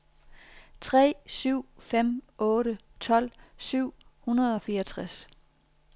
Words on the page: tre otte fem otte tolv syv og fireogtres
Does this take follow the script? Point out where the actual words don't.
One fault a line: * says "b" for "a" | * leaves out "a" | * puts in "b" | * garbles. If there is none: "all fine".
* says "syv" for "otte"
* puts in "hundrede"